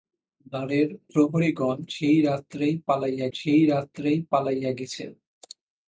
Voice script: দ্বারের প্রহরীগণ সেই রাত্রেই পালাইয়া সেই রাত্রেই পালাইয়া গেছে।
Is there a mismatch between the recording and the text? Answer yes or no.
no